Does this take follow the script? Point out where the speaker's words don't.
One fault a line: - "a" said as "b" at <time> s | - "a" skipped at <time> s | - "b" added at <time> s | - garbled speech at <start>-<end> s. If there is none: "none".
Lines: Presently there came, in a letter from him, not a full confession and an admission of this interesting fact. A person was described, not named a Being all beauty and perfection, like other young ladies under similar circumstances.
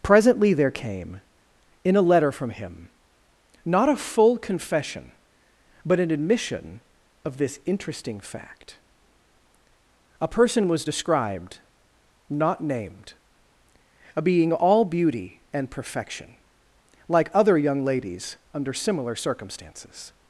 - "and" said as "but" at 5.8 s